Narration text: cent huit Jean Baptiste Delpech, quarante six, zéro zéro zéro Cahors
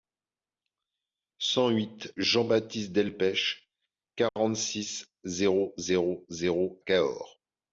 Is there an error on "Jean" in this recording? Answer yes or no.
no